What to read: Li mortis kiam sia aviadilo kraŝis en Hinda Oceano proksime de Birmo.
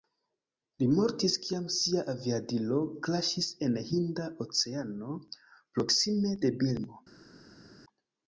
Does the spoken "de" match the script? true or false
true